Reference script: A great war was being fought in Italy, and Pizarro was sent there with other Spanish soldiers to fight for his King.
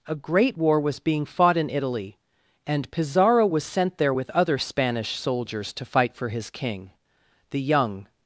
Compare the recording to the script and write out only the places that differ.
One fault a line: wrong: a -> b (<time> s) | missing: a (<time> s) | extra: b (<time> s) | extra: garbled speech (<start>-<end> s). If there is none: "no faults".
extra: The young (7.5 s)